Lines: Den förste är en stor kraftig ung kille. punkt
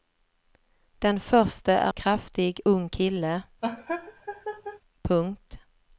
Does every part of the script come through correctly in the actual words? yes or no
no